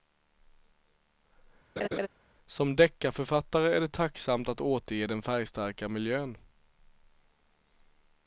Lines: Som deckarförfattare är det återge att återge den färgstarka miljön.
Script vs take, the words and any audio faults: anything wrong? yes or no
yes